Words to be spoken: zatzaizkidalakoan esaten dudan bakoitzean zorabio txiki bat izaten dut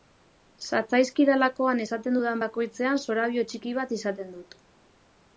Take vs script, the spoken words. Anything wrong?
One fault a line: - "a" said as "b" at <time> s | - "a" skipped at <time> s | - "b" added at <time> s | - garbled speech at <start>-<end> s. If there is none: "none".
none